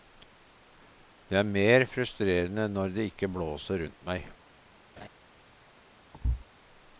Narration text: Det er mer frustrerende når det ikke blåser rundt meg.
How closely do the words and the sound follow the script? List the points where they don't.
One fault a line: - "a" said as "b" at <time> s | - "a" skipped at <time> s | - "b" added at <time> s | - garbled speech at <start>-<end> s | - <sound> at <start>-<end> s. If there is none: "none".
- laugh at 5.0-5.1 s
- thud at 6.1-6.5 s